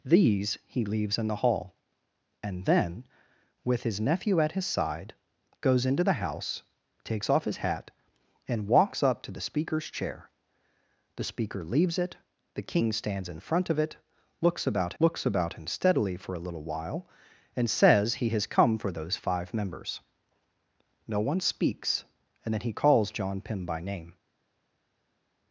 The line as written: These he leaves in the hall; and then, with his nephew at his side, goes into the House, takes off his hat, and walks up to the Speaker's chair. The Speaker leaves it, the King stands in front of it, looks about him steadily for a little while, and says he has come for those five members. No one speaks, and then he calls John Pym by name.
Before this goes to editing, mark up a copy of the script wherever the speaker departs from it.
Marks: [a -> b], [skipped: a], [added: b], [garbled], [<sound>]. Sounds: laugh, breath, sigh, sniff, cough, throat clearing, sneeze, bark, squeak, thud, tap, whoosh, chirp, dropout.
These he leaves in the hall; and then, with his nephew at his side, goes into the House, takes off his hat, and walks up to the Speaker's chair. The Speaker leaves it, the King stands in front of it, looks about [added: looks about] him steadily for a little while, and says he has come for those five members. No one speaks, and then he calls John Pym by name.